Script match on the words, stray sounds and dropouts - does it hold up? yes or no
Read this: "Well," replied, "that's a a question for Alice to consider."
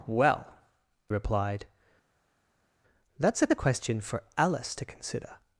yes